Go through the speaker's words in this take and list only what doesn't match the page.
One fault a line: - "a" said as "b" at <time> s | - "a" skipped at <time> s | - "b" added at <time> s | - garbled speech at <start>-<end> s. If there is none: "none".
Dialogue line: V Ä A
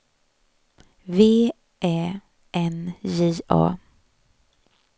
- "N J" added at 2.6 s